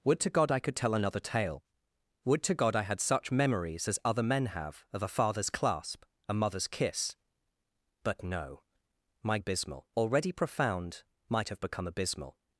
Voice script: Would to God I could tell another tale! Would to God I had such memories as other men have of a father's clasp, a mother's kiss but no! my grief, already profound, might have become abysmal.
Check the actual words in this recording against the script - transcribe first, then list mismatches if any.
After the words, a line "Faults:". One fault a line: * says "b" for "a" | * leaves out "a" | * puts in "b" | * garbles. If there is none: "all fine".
Would to God I could tell another tale! Would to God I had such memories as other men have of a father's clasp, a mother's kiss but no! my abysmal, already profound, might have become abysmal.
Faults:
* says "abysmal" for "grief"